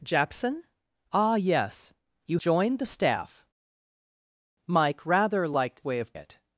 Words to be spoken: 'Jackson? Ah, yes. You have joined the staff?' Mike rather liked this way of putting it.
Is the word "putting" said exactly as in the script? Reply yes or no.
no